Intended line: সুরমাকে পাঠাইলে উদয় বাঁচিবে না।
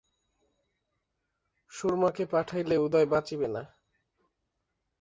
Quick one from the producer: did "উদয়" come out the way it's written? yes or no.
yes